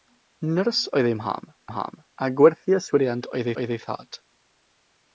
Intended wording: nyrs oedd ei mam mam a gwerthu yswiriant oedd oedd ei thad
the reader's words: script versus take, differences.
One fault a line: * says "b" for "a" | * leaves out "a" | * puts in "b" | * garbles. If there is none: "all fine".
all fine